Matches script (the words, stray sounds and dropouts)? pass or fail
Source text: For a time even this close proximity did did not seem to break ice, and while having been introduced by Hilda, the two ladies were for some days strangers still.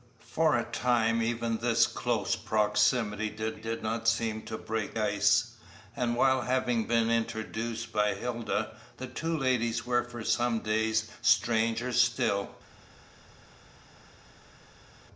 pass